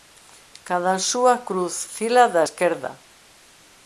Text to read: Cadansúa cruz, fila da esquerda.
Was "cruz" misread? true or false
false